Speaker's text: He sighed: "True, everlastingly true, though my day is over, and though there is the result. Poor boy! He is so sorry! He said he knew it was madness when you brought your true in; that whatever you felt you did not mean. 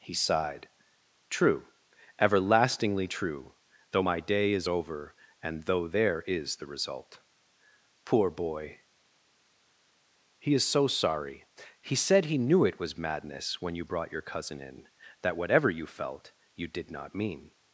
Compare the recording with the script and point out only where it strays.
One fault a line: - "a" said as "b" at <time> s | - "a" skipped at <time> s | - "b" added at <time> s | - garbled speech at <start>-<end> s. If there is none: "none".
- "true" said as "cousin" at 14.2 s